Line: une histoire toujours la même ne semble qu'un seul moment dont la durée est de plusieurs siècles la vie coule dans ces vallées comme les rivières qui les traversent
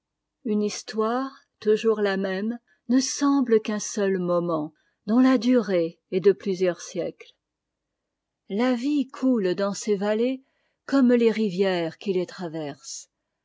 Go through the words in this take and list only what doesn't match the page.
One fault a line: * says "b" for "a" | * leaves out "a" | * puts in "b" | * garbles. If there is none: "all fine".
all fine